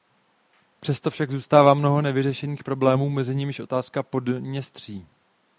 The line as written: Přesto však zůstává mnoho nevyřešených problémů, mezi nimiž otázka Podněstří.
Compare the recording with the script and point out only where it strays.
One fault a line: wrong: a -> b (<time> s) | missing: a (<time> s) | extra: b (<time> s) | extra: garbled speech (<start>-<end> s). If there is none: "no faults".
no faults